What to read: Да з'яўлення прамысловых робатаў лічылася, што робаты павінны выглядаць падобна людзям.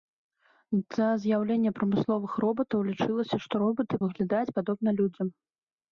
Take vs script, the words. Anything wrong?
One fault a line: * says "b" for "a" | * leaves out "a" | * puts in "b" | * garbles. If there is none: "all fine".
* leaves out "павінны"